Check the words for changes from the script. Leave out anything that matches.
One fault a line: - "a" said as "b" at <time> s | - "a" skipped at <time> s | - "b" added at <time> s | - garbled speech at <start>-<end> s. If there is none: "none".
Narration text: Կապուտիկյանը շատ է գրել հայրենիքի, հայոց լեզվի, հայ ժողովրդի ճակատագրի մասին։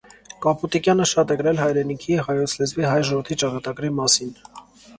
none